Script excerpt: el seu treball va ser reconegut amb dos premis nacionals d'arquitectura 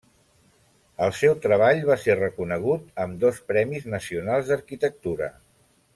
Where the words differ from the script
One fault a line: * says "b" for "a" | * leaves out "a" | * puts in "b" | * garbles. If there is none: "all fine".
all fine